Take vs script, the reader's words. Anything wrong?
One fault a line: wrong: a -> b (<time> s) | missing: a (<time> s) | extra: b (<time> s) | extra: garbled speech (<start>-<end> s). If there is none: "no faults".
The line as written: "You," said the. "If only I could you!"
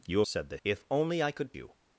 no faults